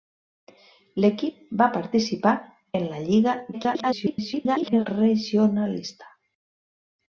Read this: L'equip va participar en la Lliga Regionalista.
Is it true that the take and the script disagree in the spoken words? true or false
true